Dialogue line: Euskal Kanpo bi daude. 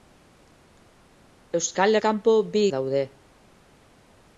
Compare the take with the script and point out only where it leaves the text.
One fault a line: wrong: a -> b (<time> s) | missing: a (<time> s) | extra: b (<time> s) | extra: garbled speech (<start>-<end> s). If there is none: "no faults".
no faults